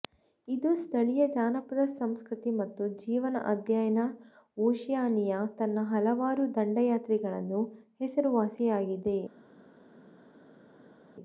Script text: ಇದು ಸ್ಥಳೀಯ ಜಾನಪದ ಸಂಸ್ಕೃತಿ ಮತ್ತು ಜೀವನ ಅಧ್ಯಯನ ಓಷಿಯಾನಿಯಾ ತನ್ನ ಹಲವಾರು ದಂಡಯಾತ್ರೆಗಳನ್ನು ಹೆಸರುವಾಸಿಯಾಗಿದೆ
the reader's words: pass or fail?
pass